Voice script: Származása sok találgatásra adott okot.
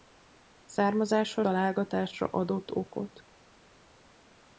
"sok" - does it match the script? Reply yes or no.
no